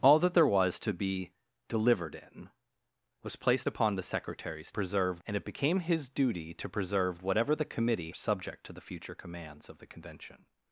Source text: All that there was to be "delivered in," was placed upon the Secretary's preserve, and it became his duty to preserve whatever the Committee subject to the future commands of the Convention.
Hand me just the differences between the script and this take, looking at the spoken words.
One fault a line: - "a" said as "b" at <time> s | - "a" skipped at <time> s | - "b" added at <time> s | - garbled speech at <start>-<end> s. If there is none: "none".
none